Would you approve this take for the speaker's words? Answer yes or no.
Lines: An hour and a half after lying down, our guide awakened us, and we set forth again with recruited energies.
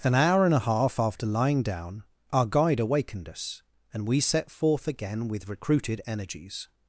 yes